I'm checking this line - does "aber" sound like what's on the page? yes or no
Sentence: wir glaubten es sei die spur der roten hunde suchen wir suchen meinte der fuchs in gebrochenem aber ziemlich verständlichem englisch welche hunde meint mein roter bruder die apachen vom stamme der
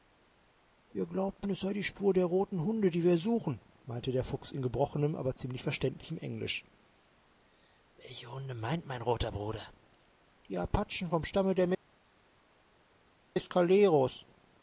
yes